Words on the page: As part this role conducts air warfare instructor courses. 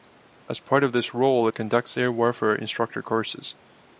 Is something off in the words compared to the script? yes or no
yes